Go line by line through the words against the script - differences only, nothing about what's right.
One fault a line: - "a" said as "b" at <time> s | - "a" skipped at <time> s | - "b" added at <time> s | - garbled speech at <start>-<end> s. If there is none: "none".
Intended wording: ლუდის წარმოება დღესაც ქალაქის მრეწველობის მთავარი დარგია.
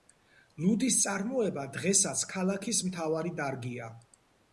- "მრეწველობის" skipped at 2.8 s